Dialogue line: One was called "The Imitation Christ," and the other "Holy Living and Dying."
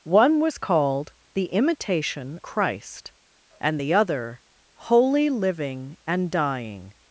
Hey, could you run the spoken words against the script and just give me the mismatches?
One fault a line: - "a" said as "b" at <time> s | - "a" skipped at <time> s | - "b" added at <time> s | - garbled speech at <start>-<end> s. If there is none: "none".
none